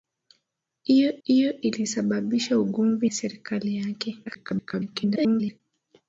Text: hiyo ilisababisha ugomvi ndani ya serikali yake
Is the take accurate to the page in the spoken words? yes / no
no